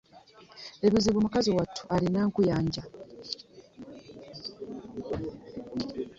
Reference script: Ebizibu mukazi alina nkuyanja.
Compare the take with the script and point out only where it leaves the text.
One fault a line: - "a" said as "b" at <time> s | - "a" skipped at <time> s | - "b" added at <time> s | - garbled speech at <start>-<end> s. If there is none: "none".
- "wattu" added at 1.6 s